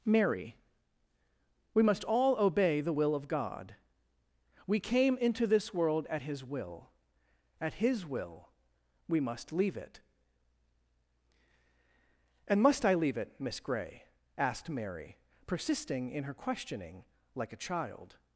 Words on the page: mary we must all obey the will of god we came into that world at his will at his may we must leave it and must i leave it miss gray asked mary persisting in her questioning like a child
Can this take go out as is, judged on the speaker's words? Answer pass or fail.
fail